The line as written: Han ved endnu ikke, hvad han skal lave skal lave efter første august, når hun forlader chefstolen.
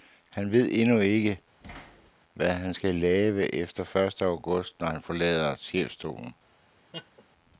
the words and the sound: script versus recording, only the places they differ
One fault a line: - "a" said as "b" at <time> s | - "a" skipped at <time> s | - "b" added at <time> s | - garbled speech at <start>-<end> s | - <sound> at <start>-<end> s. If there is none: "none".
- thud at 1.6-2.1 s
- "skal lave" skipped at 3.5 s
- "hun" said as "han" at 4.9 s
- laugh at 6.9-7.2 s